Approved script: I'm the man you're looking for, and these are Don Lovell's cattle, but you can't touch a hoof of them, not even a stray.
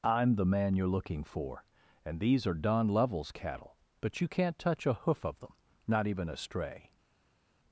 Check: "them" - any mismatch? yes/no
no